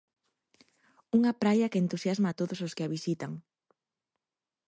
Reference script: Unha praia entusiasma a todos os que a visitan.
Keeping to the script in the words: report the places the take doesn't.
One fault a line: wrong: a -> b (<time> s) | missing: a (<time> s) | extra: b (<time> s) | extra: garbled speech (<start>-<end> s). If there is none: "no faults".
extra: que (1.7 s)